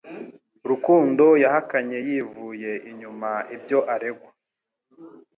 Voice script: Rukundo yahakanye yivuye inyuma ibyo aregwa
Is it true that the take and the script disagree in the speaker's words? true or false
false